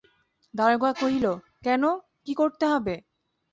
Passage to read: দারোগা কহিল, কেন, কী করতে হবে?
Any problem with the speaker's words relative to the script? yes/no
no